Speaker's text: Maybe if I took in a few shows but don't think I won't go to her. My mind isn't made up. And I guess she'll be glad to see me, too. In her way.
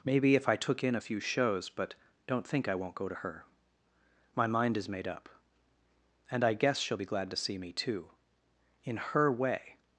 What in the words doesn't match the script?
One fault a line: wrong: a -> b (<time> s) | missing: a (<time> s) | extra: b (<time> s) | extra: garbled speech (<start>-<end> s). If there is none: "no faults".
wrong: isn't -> is (4.8 s)